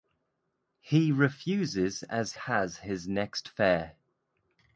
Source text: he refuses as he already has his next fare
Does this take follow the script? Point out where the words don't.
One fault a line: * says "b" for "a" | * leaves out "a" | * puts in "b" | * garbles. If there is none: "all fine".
* leaves out "he already"